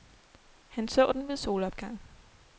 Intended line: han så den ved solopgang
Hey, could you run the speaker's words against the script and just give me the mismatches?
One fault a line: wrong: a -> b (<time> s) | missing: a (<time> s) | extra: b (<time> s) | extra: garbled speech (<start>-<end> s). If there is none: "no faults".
no faults